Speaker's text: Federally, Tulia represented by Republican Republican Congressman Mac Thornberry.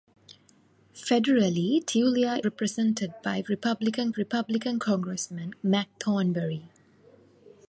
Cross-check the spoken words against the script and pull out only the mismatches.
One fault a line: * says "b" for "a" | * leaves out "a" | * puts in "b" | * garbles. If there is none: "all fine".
all fine